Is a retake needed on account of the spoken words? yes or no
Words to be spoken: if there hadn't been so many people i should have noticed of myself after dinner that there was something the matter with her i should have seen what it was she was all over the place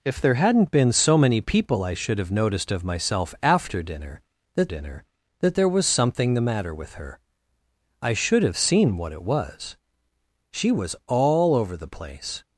yes